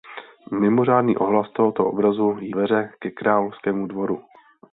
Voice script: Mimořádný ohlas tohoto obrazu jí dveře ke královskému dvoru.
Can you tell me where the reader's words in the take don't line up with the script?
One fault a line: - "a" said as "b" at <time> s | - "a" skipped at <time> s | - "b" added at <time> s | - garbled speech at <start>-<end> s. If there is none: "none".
none